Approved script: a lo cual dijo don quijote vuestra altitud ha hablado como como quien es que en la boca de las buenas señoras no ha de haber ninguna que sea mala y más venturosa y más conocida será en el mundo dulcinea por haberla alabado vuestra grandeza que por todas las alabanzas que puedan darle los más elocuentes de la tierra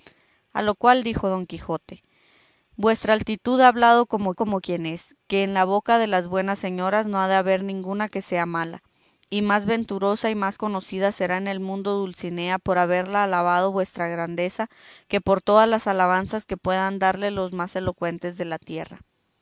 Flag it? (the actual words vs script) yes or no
no